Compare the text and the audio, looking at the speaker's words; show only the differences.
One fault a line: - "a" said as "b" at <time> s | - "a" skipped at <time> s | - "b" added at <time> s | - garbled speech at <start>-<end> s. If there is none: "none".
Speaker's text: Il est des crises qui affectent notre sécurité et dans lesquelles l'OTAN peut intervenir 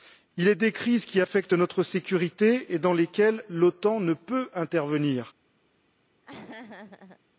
- "ne" added at 4.0 s